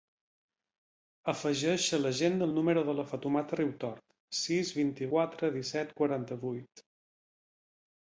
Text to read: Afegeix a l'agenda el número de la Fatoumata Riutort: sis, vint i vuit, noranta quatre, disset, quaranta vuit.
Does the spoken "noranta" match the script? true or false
false